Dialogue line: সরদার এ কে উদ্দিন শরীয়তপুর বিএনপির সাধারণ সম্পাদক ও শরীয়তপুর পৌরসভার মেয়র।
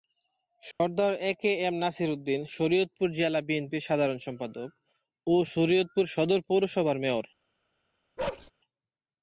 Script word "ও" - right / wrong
right